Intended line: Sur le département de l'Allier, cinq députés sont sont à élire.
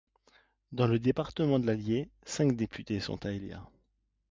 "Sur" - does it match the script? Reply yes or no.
no